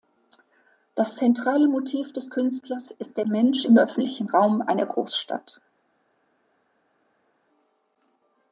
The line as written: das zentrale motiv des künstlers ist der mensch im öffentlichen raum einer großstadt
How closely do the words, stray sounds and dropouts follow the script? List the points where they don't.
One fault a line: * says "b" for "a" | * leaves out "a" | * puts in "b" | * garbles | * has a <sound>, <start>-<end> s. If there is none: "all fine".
all fine